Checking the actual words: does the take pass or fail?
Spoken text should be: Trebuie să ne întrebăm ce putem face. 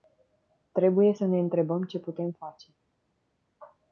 pass